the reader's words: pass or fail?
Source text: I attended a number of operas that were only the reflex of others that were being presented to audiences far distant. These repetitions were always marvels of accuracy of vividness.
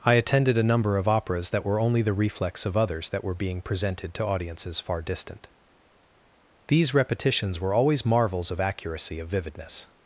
pass